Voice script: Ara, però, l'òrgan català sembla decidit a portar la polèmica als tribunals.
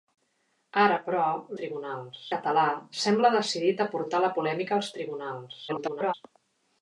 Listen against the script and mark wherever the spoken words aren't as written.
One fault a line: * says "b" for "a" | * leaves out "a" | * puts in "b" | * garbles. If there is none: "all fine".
* says "tribunals" for "l'òrgan"
* garbles